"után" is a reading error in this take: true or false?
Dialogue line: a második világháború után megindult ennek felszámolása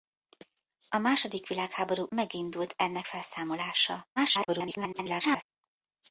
true